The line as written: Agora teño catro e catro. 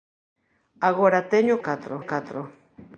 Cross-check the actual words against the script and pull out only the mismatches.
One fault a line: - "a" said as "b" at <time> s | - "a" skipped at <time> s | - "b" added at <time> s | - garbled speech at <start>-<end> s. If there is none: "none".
none